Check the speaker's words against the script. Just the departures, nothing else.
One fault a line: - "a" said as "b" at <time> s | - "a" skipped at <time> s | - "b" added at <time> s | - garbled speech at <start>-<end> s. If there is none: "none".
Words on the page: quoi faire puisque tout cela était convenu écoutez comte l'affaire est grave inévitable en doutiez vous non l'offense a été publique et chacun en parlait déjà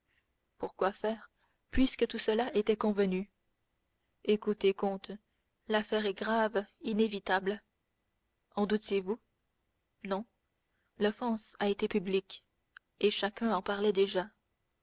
none